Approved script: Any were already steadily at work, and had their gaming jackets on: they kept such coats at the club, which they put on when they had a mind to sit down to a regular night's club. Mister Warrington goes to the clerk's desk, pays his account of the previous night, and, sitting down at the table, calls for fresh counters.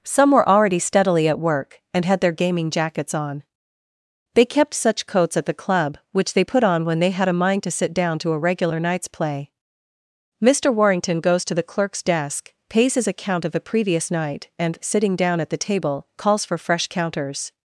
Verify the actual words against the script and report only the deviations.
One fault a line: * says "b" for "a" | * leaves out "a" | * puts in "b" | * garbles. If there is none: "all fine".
* says "Some" for "Any"
* says "play" for "club"